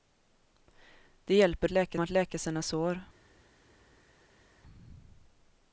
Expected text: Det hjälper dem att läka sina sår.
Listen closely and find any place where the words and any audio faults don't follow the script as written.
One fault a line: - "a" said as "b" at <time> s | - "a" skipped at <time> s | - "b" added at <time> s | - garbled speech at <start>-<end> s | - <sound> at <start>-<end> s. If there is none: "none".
- "dem" said as "läka" at 1.7 s